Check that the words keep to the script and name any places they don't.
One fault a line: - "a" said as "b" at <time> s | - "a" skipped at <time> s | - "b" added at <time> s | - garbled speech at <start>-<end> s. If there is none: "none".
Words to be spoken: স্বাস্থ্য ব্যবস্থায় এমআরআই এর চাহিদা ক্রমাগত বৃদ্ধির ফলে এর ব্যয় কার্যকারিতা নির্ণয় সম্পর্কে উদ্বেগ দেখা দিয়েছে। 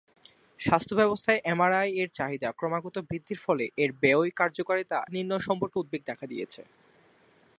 none